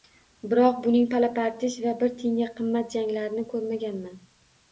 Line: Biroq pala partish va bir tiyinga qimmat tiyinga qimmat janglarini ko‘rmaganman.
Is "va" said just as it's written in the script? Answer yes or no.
yes